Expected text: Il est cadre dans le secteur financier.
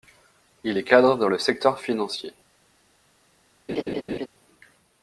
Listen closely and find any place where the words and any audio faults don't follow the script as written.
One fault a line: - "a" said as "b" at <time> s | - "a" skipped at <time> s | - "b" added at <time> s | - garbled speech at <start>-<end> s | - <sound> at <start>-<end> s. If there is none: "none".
- laugh at 3.7-4.3 s